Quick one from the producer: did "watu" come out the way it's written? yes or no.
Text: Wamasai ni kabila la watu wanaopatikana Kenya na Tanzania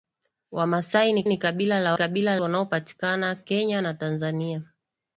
no